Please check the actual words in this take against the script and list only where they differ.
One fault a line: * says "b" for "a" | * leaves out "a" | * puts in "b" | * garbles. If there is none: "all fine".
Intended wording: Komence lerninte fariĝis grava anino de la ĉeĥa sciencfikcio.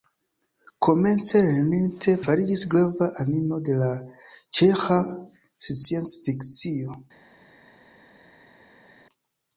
all fine